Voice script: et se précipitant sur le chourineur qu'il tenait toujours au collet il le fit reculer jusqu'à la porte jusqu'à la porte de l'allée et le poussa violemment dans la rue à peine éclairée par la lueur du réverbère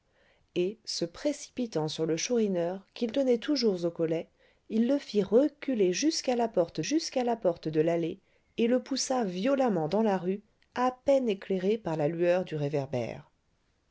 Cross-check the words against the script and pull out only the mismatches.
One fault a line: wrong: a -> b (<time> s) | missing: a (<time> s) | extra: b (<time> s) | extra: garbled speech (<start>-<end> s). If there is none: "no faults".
no faults